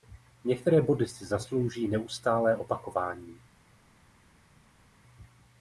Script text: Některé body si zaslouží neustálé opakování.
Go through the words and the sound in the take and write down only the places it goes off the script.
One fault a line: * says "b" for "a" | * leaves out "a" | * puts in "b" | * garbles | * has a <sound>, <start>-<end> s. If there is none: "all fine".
all fine